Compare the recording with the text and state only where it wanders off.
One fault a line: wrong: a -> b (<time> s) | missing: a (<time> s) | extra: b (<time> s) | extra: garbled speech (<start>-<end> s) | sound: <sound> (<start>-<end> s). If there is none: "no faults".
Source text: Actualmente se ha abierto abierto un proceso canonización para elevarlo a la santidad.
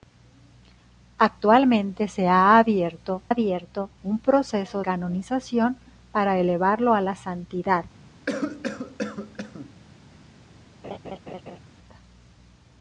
sound: cough (8.3-9.7 s)
sound: laugh (10.8-11.6 s)